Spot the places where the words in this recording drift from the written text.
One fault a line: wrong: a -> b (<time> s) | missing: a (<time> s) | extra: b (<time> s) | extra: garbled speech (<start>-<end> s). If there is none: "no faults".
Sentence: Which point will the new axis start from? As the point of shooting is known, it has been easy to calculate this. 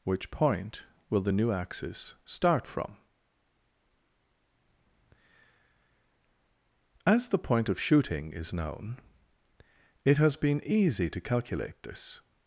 no faults